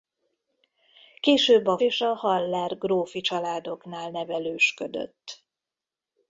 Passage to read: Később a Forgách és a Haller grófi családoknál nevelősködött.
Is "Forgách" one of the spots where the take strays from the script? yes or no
yes